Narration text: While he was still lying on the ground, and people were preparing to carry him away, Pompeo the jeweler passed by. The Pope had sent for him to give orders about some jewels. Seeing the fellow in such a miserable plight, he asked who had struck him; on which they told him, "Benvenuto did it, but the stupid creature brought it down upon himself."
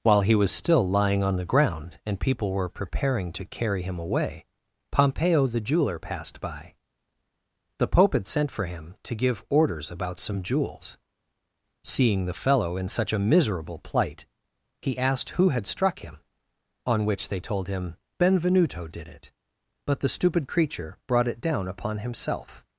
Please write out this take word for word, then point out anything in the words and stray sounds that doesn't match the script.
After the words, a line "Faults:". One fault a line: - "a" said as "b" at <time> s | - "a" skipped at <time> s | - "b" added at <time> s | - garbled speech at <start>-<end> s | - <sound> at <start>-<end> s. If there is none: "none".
While he was still lying on the ground, and people were preparing to carry him away, Pompeo the jeweler passed by. The Pope had sent for him to give orders about some jewels. Seeing the fellow in such a miserable plight, he asked who had struck him; on which they told him, "Benvenuto did it, but the stupid creature brought it down upon himself."
Faults:
none